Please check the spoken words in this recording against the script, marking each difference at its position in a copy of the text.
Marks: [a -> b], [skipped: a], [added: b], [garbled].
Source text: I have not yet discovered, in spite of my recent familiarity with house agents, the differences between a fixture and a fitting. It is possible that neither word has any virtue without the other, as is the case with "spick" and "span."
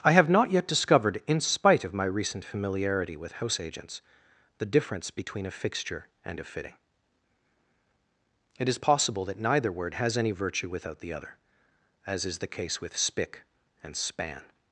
I have not yet discovered, in spite of my recent familiarity with house agents, the [differences -> difference] between a fixture and a fitting. It is possible that neither word has any virtue without the other, as is the case with "spick" and "span."